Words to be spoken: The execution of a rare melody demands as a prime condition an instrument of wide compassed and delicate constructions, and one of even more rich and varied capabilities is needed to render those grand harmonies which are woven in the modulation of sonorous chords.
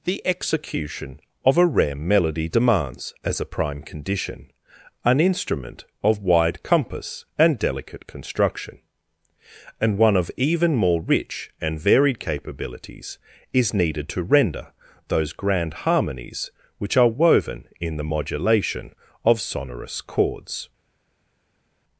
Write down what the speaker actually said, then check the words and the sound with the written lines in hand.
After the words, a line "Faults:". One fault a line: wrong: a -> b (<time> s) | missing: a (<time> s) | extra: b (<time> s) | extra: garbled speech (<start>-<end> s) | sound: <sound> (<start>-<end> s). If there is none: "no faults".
The execution of a rare melody demands as a prime condition an instrument of wide compass and delicate construction, and one of even more rich and varied capabilities is needed to render those grand harmonies which are woven in the modulation of sonorous chords.
Faults:
wrong: compassed -> compass (6.6 s)
wrong: constructions -> construction (8.1 s)